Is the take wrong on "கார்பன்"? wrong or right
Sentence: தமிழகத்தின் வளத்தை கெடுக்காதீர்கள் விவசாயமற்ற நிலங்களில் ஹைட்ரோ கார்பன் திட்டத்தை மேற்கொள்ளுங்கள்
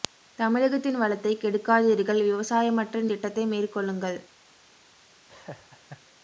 wrong